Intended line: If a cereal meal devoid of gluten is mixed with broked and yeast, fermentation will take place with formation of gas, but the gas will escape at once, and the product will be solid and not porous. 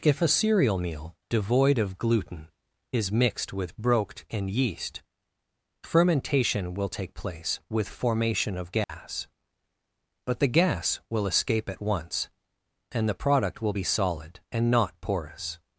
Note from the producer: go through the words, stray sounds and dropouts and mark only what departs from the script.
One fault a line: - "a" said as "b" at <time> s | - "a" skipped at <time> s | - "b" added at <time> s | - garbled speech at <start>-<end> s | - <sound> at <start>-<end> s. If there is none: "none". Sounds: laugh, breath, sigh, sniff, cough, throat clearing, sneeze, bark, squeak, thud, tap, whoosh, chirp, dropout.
- dropout at 8.8-8.9 s